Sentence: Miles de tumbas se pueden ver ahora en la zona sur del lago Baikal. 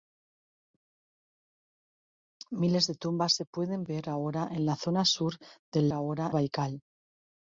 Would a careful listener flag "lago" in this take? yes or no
yes